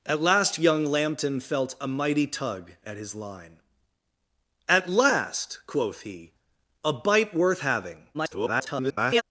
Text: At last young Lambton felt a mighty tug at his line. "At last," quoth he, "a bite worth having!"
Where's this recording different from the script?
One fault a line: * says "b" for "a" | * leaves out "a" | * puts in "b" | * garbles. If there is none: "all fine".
* garbles